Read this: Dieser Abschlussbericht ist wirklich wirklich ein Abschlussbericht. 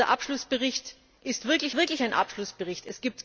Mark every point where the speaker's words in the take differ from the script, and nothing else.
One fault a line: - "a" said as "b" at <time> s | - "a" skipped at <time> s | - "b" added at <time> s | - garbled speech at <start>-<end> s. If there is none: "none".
none